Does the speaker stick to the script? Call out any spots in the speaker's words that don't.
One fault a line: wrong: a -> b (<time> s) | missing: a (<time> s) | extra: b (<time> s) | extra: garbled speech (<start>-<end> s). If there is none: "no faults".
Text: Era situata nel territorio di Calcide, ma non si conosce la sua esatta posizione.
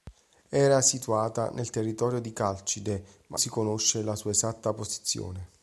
missing: non (3.4 s)